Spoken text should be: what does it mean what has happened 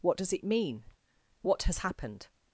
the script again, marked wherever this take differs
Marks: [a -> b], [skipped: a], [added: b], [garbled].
what does it mean what has happened